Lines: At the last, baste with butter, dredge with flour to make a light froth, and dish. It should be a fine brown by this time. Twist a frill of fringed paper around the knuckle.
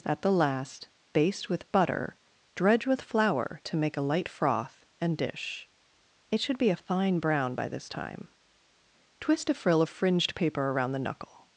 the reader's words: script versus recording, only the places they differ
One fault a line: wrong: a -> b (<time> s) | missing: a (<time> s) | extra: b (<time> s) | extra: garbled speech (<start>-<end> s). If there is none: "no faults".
no faults